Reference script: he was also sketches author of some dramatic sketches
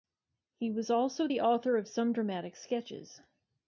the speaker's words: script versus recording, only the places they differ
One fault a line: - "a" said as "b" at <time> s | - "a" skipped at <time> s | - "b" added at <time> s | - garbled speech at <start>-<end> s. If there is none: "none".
- "sketches" said as "the" at 1.2 s